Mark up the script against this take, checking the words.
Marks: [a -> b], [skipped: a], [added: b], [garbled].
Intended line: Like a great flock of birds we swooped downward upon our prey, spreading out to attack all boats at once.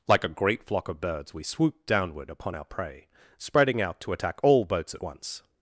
Like a great flock of birds we swooped downward upon our prey, spreading out to attack all boats at once.